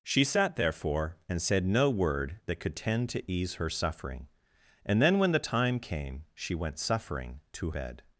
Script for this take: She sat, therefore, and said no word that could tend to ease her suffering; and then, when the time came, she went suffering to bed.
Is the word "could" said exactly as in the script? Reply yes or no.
yes